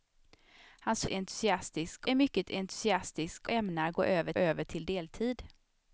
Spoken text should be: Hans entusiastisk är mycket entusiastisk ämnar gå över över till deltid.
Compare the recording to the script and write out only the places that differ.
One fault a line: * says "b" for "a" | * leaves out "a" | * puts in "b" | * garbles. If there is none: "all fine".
all fine